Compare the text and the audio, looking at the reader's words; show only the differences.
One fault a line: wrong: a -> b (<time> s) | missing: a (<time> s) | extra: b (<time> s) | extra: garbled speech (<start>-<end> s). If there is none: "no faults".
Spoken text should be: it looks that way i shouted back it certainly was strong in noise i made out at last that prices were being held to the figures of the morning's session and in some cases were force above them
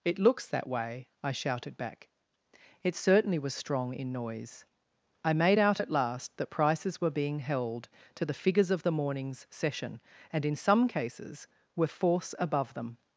no faults